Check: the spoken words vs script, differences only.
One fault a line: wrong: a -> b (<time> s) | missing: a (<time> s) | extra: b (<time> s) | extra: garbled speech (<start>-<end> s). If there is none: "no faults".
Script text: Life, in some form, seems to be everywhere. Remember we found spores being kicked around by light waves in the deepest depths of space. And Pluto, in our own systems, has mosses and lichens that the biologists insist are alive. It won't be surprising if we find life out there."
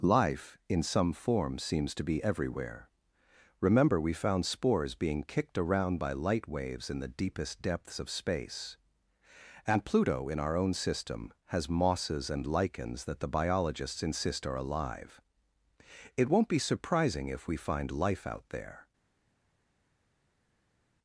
wrong: systems -> system (10.7 s)